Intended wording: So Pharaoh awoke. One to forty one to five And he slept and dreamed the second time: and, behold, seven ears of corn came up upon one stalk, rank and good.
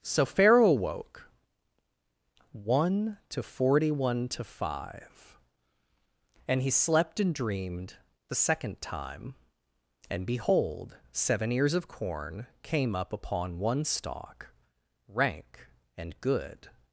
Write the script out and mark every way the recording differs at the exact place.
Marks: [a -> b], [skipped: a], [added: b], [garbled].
So Pharaoh awoke. One to forty one to five And he slept and dreamed the second time: and, behold, seven ears of corn came up upon one stalk, rank and good.